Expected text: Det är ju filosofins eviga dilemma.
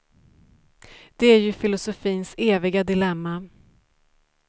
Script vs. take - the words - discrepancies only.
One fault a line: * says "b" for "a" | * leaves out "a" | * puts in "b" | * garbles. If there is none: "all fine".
all fine